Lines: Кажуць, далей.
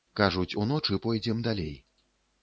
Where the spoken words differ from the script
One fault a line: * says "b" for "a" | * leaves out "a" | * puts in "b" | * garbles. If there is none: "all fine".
* puts in "уночы пойдзем"